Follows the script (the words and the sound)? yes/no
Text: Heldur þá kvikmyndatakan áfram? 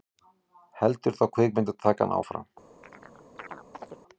no